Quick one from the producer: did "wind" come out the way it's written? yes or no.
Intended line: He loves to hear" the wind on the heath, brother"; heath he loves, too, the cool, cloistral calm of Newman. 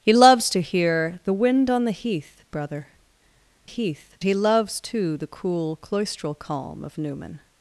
yes